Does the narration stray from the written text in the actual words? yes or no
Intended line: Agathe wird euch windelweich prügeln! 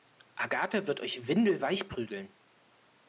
no